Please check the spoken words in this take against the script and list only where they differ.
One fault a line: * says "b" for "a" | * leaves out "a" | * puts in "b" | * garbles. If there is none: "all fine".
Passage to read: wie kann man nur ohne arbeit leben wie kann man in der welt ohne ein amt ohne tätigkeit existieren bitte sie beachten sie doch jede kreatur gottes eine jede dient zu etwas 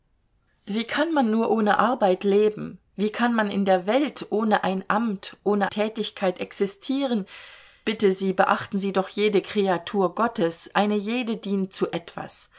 all fine